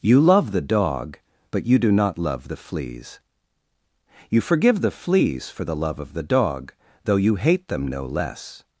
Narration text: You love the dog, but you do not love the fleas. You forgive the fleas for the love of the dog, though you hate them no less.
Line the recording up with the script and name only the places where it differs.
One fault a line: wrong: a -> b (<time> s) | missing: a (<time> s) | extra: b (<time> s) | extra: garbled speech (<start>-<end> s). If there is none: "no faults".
no faults